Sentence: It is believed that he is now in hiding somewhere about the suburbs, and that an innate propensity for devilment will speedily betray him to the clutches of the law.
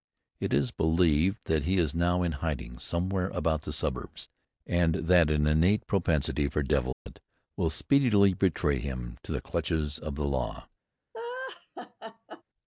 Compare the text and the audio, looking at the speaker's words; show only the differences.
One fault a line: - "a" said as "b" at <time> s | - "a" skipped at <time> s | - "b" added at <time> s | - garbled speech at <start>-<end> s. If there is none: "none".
none